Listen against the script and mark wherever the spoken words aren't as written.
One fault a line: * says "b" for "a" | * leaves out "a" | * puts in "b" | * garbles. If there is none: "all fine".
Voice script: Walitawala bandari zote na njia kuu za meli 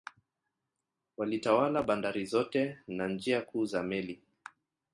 all fine